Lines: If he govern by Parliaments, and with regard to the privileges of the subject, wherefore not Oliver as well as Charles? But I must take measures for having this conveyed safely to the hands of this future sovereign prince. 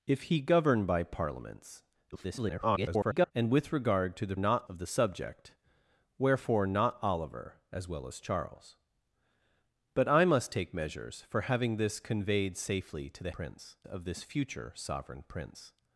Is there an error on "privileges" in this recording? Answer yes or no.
yes